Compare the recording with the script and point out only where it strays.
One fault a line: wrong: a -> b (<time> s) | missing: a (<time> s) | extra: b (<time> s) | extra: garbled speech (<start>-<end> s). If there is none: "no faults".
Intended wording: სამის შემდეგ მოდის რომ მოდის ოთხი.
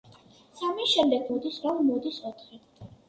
no faults